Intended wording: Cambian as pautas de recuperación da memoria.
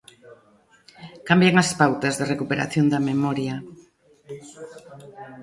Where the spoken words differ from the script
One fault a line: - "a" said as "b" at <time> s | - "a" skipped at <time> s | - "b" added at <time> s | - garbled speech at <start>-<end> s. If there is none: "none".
none